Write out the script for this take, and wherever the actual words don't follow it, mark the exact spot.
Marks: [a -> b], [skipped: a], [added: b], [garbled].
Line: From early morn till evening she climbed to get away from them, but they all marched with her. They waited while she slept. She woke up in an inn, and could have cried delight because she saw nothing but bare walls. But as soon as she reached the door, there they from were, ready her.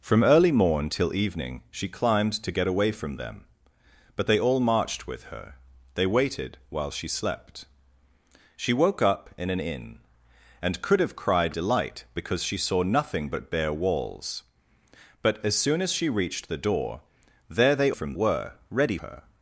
From early morn till evening she climbed to get away from them, but they all marched with her. They waited while she slept. She woke up in an inn, and could have cried delight because she saw nothing but bare walls. But as soon as she reached the door, there they from were, ready her.